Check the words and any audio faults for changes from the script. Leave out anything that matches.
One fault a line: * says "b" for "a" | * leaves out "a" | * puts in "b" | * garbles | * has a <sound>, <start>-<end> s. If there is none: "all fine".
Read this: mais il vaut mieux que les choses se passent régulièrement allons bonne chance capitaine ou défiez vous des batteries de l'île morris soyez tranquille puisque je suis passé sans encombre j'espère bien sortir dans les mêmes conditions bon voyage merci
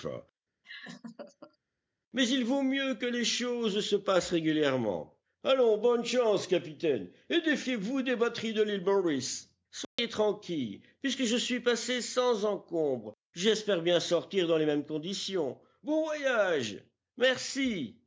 * has a laugh, 0.6-1.6 s
* says "et" for "ou"
* has a dropout, 9.8-10.0 s